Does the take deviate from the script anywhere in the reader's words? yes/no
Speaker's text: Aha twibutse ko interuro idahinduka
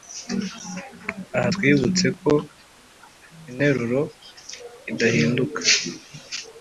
no